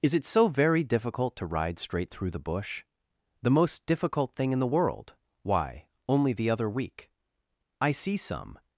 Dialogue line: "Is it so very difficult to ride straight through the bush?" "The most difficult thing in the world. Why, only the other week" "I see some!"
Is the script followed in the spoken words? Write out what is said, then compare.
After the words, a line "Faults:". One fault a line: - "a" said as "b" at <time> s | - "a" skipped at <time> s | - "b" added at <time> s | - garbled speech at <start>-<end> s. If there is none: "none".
"Is it so very difficult to ride straight through the bush?" "The most difficult thing in the world. Why, only the other week" "I see some!"
Faults:
none